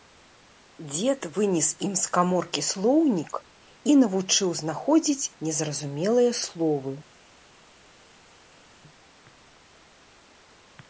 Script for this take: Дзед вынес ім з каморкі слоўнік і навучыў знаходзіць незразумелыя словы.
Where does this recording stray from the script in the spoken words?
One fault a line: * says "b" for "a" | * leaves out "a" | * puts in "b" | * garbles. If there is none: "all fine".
all fine